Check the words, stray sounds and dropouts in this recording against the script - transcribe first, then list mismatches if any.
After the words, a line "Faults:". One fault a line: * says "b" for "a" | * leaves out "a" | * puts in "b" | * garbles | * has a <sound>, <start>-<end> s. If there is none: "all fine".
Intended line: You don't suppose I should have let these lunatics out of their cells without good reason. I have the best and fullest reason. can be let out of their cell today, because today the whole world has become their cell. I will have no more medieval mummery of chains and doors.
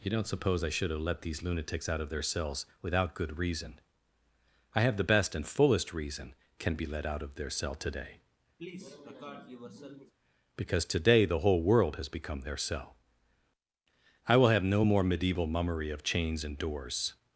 You don't suppose I should have let these lunatics out of their cells without good reason. I have the best and fullest reason. can be let out of their cell today, because today the whole world has become their cell. I will have no more medieval mummery of chains and doors.
Faults:
* has a cough, 8.6-10.1 s